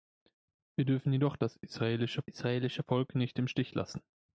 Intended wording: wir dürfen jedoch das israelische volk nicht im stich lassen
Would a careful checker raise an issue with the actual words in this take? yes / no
yes